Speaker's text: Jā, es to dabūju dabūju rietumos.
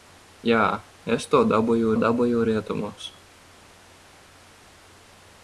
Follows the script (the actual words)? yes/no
yes